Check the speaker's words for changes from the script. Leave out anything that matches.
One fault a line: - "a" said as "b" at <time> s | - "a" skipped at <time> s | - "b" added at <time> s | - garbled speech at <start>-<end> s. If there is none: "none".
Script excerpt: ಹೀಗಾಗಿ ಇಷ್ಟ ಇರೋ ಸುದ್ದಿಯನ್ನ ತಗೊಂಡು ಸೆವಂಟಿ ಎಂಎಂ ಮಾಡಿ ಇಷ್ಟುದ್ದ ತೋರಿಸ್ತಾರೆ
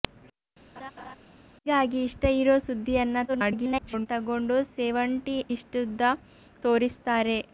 - garbled speech at 3.3-4.1 s
- "ಎಂಎಂ ಮಾಡಿ" skipped at 5.4 s